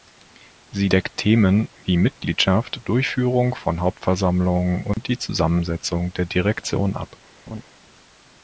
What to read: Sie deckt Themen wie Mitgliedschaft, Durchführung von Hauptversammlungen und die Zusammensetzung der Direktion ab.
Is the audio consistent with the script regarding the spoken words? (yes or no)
yes